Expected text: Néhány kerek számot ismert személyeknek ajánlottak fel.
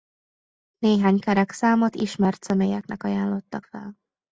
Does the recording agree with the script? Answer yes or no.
yes